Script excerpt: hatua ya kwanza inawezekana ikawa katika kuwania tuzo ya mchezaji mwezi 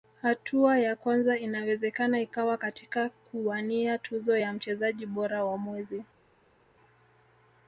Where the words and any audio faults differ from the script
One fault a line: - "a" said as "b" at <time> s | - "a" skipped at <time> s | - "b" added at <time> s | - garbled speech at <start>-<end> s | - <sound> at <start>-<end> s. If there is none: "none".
- "bora wa" added at 5.1 s